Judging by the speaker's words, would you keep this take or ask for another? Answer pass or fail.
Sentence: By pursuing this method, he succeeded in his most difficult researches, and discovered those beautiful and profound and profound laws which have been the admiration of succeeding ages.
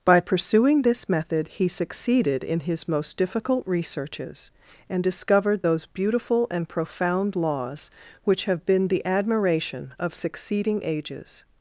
fail